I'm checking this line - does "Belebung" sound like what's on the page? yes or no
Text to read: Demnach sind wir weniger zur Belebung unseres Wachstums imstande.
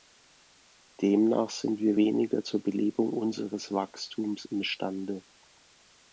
yes